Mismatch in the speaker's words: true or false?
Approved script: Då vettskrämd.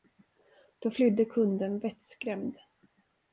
true